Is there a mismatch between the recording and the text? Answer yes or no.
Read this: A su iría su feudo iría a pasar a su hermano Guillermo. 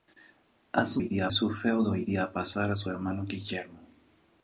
no